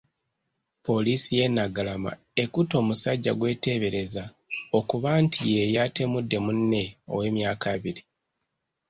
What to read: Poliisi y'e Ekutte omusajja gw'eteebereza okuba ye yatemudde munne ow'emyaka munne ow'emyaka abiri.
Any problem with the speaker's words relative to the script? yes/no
yes